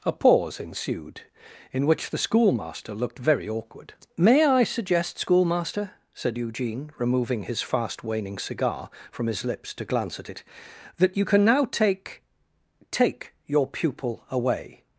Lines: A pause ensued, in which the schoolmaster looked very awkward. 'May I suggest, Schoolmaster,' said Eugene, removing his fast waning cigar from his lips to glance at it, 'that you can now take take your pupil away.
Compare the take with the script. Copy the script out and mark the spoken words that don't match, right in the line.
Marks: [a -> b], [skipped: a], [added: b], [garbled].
A pause ensued, in which the schoolmaster looked very awkward. 'May I suggest, Schoolmaster,' said Eugene, removing his fast waning cigar from his lips to glance at it, 'that you can now take take your pupil away.